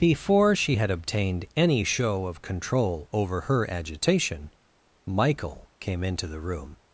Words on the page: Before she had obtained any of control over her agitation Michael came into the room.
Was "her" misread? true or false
false